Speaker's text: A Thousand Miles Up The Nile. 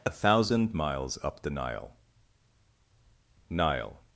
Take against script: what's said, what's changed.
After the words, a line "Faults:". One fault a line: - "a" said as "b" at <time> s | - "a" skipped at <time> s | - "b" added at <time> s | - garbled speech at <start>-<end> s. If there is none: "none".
A Thousand Miles Up The Nile Nile.
Faults:
- "Nile" added at 3.5 s